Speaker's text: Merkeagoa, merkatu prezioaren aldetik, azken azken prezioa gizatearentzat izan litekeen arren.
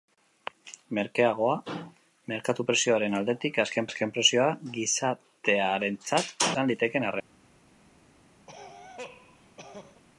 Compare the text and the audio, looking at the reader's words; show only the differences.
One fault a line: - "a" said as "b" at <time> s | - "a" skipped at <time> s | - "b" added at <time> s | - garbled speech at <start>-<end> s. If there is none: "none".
none